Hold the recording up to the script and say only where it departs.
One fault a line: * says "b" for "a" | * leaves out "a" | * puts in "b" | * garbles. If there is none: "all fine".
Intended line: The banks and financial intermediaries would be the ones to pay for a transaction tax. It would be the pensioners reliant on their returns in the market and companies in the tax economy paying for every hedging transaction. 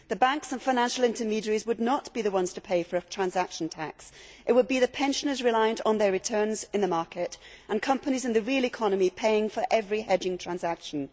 * puts in "not"
* says "real" for "tax"